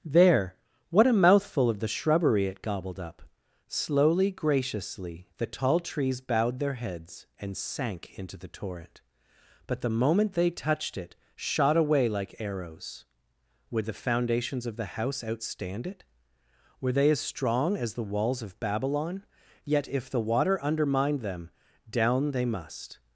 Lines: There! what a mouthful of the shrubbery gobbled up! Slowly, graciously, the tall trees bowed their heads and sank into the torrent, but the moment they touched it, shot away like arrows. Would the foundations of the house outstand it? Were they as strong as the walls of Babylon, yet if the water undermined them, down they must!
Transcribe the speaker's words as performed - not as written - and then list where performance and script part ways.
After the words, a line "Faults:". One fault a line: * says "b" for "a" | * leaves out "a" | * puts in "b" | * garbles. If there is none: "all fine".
There! what a mouthful of the shrubbery it gobbled up! Slowly, graciously, the tall trees bowed their heads and sank into the torrent, but the moment they touched it, shot away like arrows. Would the foundations of the house outstand it? Were they as strong as the walls of Babylon, yet if the water undermined them, down they must!
Faults:
* puts in "it"